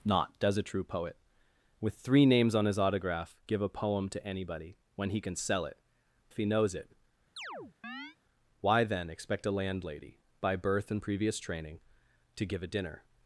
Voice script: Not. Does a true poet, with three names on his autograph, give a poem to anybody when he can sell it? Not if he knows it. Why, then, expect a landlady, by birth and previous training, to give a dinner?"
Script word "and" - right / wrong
right